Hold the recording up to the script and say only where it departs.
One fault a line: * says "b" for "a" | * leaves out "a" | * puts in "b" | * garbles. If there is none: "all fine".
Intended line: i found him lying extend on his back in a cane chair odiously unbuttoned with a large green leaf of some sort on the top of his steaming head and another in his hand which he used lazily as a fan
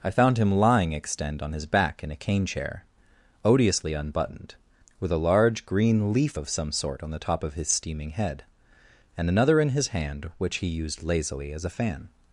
all fine